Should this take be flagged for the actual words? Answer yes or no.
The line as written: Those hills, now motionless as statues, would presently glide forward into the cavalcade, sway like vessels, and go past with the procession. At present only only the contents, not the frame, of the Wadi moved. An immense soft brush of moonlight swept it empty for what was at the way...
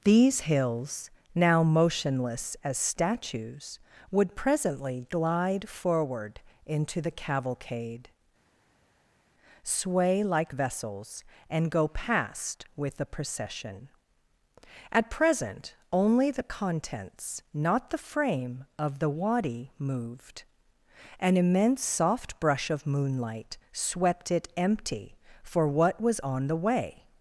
yes